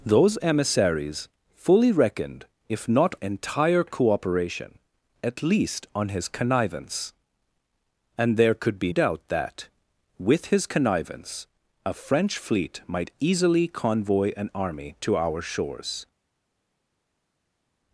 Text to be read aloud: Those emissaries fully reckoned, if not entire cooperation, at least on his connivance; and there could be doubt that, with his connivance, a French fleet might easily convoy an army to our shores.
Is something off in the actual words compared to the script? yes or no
no